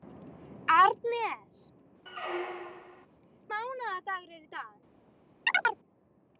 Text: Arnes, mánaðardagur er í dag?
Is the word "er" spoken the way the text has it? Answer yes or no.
yes